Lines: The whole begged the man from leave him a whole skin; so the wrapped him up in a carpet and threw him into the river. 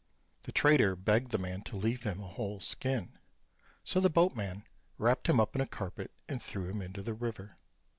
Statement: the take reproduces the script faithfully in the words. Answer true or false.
false